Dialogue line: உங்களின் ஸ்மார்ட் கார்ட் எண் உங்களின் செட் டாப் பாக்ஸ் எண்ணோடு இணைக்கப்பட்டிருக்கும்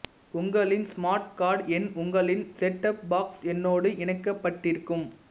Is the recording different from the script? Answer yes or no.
no